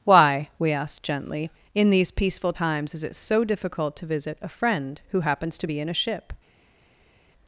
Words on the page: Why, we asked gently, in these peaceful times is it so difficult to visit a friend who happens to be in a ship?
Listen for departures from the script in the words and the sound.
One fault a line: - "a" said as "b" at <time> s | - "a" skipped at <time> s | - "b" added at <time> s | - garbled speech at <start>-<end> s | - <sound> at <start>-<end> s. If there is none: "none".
none